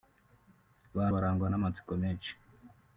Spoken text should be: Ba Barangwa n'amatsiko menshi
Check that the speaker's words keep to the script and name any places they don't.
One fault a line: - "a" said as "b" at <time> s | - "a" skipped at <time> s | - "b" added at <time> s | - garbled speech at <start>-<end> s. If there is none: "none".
none